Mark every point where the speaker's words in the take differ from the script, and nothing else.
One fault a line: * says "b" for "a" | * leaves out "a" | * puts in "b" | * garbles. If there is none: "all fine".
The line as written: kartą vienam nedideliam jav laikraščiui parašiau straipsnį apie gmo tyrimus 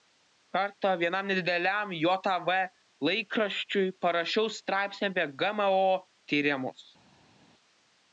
all fine